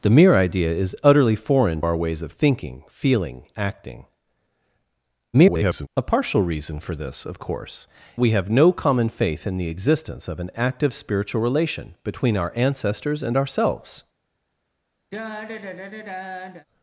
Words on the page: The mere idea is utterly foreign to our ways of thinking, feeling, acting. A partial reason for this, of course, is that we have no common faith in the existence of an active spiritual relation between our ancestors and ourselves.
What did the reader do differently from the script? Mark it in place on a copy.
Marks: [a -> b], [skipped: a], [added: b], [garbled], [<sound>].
The mere idea is utterly foreign [skipped: to] our ways of thinking, feeling, acting. [garbled] A partial reason for this, of course, [skipped: is that] we have no common faith in the existence of an active spiritual relation between our ancestors and ourselves. [sigh]